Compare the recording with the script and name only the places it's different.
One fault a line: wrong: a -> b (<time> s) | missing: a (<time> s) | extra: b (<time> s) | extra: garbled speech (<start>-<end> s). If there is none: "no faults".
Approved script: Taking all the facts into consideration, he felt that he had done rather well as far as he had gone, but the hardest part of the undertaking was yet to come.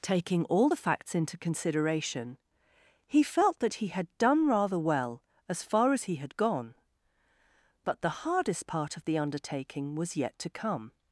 no faults